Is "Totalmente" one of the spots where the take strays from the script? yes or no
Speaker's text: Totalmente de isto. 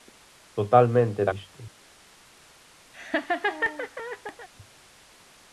no